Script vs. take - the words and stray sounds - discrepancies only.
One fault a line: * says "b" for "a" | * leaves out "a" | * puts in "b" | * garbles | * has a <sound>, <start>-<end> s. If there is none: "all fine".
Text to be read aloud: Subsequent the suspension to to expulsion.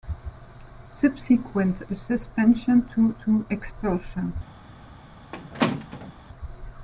* has a squeak, 5.3-6.1 s